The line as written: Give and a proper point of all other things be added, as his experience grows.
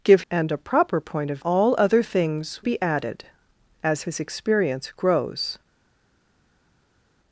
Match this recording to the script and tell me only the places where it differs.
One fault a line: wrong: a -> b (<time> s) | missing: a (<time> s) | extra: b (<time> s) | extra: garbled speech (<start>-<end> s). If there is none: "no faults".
no faults